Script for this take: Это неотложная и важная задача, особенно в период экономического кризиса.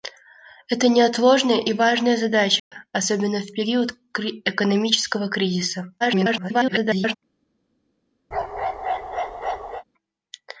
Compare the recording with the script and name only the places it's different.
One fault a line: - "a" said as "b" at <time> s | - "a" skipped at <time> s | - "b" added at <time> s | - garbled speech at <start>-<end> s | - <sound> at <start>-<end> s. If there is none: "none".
- dropout at 2.6-2.7 s
- garbled speech at 6.0-7.2 s
- bark at 8.3-9.8 s